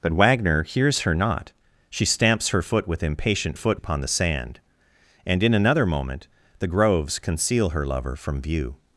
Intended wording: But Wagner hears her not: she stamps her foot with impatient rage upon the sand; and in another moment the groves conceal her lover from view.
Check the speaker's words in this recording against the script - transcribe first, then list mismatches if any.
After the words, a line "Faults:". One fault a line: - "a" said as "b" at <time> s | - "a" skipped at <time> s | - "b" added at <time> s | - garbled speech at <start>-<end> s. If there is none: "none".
But Wagner hears her not: she stamps her foot with impatient foot upon the sand; and in another moment the groves conceal her lover from view.
Faults:
- "rage" said as "foot" at 3.5 s